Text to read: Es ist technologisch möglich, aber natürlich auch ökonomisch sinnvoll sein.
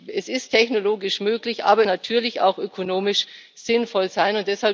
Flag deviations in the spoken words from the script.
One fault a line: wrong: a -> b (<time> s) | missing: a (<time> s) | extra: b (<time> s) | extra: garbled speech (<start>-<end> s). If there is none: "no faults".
no faults